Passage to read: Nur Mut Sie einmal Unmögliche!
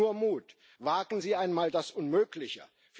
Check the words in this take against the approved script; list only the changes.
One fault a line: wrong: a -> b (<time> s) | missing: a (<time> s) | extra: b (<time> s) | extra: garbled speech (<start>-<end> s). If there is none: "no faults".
extra: Wagen (0.8 s)
extra: das (1.7 s)